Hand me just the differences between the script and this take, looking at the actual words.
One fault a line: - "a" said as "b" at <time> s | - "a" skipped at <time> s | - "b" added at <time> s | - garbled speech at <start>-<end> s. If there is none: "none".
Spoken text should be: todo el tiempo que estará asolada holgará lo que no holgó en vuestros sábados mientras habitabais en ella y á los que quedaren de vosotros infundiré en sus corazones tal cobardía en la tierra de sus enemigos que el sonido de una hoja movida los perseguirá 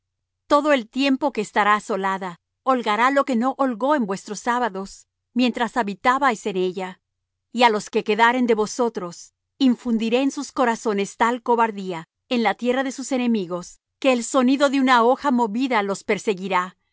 none